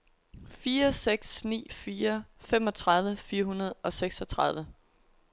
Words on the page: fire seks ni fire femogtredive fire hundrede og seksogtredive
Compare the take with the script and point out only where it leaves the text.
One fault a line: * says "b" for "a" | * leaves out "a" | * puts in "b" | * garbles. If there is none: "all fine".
all fine